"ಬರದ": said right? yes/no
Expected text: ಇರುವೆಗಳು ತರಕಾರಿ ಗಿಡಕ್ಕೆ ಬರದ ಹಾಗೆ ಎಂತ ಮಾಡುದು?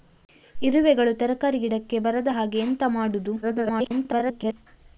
yes